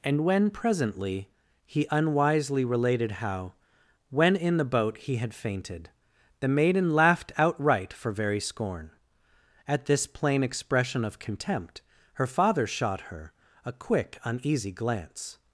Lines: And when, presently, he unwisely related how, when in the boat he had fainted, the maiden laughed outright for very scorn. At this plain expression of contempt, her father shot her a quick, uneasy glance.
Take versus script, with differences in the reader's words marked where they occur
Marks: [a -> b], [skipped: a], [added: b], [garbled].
And when, presently, he unwisely related how, when in the boat he had fainted, the maiden laughed outright for very scorn. At this plain expression of contempt, her father shot her a quick, uneasy glance.